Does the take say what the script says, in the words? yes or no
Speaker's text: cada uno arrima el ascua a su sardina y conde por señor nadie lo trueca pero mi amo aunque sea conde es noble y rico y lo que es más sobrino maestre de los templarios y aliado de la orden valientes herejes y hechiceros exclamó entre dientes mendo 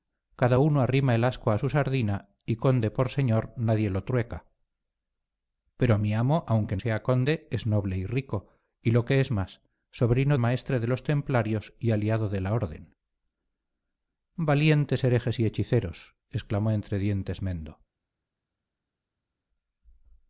yes